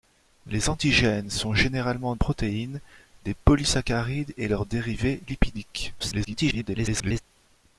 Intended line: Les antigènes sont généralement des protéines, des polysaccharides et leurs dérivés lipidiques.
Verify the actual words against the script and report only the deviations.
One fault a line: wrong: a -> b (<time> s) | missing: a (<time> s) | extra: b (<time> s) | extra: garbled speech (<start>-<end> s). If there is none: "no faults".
missing: des (2.1 s)
extra: garbled speech (6.0-7.2 s)